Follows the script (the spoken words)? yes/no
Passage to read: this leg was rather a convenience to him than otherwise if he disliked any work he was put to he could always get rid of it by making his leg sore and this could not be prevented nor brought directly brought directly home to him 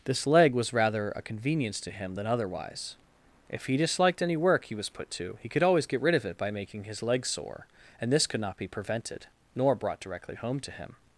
no